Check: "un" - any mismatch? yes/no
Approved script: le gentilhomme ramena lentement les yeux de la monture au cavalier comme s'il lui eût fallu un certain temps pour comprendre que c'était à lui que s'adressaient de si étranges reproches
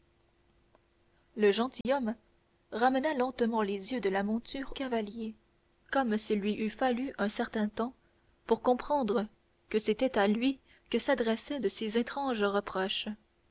no